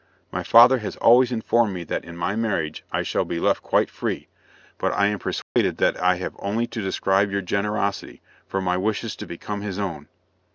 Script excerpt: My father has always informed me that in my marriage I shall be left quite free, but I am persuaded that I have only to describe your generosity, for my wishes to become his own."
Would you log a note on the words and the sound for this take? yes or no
yes